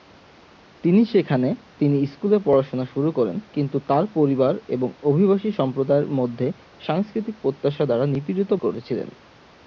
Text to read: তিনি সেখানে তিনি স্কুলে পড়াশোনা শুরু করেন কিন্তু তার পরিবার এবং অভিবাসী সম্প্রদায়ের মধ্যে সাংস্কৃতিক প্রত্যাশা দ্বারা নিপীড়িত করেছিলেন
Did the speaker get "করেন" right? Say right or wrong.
right